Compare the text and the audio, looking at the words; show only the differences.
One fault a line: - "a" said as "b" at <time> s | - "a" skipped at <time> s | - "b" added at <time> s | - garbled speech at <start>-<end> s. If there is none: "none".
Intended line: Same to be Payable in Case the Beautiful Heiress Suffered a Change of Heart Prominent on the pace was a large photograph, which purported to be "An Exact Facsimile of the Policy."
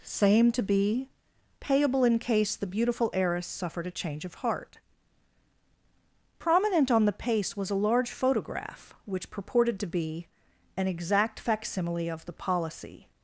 none